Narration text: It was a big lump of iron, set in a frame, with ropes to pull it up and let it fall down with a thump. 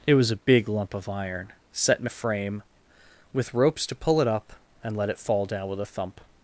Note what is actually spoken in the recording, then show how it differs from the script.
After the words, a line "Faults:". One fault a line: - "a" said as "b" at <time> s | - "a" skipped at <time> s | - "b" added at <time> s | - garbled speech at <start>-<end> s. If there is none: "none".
It was a big lump of iron, set in a frame, with ropes to pull it up and let it fall down with a thump.
Faults:
none